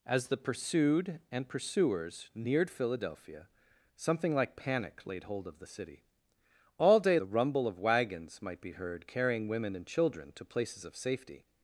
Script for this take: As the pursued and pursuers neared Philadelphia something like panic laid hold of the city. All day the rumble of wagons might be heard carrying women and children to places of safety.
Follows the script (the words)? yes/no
yes